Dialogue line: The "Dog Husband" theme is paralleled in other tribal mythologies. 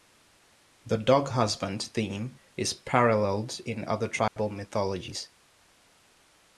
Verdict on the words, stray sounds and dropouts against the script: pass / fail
fail